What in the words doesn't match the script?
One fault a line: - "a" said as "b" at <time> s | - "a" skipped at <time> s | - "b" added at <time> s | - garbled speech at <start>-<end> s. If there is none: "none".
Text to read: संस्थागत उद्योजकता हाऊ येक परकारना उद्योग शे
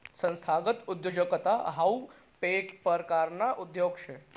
none